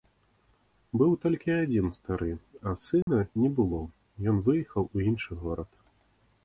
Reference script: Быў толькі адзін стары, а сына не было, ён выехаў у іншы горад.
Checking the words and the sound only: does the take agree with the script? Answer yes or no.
no